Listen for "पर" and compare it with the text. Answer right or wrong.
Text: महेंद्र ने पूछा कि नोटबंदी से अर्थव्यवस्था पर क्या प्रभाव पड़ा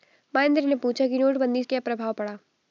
wrong